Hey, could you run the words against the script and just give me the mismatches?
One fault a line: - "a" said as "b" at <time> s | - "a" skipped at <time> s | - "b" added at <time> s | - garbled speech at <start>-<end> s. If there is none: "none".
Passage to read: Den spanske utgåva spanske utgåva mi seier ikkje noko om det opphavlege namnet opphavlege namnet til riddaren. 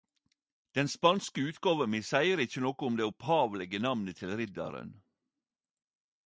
- "spanske utgåva" skipped at 1.9 s
- "opphavlege namnet" skipped at 4.2 s